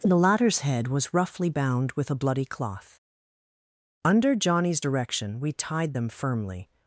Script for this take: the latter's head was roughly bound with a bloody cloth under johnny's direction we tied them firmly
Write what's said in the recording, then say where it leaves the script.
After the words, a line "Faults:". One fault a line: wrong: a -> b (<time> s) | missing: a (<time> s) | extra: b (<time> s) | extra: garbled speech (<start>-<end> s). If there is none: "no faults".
the latter's head was roughly bound with a bloody cloth under johnny's direction we tied them firmly
Faults:
no faults